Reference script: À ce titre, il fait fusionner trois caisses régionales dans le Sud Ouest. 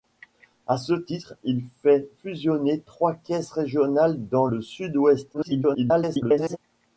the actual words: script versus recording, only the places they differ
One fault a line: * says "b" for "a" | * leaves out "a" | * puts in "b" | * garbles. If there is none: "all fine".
* garbles